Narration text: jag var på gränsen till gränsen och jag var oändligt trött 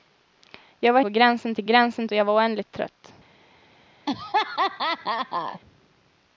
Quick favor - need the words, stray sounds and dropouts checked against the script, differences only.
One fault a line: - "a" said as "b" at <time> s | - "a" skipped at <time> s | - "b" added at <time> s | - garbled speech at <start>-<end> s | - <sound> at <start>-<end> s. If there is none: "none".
- laugh at 4.1-5.6 s